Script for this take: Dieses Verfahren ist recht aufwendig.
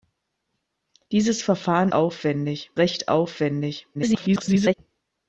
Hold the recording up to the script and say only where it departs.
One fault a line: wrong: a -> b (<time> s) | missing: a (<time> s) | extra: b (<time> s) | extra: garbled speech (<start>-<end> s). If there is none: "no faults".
wrong: ist -> aufwendig (1.9 s)
extra: garbled speech (3.9-4.7 s)